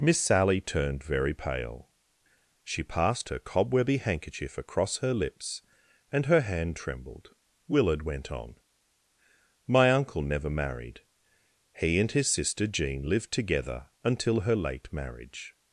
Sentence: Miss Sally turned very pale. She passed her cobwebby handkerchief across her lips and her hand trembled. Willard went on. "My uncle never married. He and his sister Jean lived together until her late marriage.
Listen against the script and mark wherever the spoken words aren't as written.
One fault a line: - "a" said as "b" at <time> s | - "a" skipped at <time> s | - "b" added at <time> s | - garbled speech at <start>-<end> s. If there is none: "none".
none